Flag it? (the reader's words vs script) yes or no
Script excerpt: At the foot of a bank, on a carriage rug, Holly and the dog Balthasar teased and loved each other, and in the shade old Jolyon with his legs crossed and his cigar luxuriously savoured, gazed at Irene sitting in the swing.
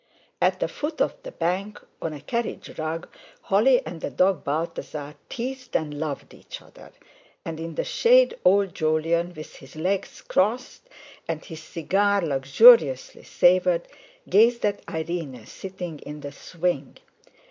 yes